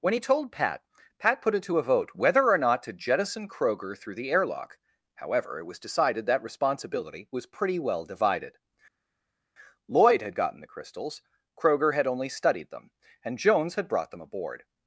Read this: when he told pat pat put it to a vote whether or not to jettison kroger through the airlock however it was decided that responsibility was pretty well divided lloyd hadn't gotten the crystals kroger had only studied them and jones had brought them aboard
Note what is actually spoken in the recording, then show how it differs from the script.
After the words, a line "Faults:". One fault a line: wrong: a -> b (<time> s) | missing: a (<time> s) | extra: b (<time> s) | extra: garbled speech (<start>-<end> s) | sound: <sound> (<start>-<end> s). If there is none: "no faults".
when he told pat pat put it to a vote whether or not to jettison kroger through the airlock however it was decided that responsibility was pretty well divided lloyd had gotten the crystals kroger had only studied them and jones had brought them aboard
Faults:
wrong: hadn't -> had (10.2 s)